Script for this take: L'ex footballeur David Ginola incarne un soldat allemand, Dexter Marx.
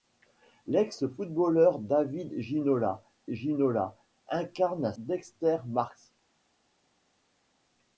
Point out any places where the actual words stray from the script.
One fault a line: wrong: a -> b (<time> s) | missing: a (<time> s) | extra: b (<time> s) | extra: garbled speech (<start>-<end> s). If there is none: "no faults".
extra: Ginola (3.3 s)
missing: soldat allemand (4.9 s)